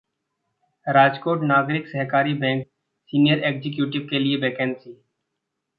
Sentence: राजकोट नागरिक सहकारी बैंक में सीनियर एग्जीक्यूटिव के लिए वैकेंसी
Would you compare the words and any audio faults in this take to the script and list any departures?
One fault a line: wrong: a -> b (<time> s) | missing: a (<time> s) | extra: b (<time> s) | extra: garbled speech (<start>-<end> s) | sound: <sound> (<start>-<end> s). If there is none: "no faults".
missing: में (2.6 s)